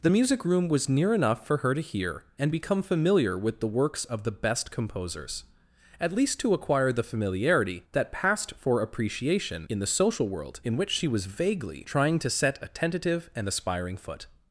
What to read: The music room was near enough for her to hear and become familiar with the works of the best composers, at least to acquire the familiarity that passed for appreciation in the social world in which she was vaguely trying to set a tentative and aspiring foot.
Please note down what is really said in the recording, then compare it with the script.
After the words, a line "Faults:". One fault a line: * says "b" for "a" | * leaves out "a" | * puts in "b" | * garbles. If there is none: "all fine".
The music room was near enough for her to hear and become familiar with the works of the best composers, at least to acquire the familiarity that passed for appreciation in the social world in which she was vaguely trying to set a tentative and aspiring foot.
Faults:
all fine